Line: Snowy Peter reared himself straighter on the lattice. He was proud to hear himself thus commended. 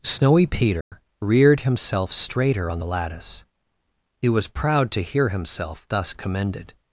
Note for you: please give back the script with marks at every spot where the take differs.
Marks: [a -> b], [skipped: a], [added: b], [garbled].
Snowy Peter reared himself straighter on the lattice. He was proud to hear himself thus commended.